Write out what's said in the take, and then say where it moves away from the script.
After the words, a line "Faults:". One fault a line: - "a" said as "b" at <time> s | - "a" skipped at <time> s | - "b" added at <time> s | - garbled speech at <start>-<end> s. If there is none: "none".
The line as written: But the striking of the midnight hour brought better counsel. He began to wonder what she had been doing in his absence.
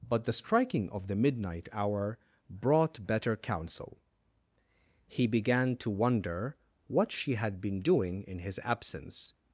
But the striking of the midnight hour brought better counsel. He began to wonder what she had been doing in his absence.
Faults:
none